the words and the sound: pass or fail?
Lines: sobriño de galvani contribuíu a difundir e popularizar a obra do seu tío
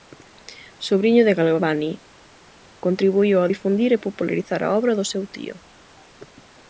pass